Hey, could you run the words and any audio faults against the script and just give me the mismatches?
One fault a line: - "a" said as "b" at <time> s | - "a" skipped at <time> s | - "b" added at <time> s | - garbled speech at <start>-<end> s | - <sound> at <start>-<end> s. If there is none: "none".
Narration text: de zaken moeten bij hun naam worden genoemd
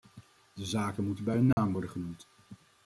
- dropout at 1.5-1.6 s